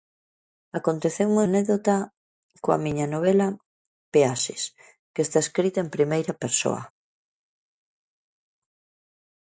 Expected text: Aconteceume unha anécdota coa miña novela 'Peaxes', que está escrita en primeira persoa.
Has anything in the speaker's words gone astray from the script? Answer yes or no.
yes